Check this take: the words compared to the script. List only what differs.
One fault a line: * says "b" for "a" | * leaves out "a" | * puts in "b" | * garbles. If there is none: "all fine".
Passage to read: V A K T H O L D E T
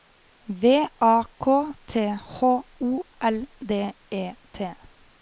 all fine